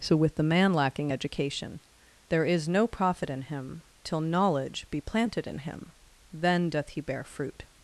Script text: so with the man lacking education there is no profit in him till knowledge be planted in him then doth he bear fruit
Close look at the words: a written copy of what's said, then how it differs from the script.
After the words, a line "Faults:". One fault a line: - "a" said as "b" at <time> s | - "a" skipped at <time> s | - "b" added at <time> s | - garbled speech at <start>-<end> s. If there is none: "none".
so with the man lacking education there is no profit in him till knowledge be planted in him then doth he bear fruit
Faults:
none